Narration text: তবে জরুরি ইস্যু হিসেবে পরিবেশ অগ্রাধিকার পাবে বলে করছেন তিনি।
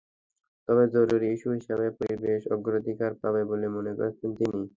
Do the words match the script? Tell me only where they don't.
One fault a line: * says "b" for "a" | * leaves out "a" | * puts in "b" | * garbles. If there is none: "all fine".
* puts in "মনে"